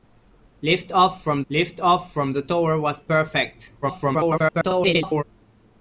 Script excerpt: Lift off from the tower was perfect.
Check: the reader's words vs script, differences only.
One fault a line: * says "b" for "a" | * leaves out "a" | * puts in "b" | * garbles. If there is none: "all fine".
* puts in "lift off from"
* garbles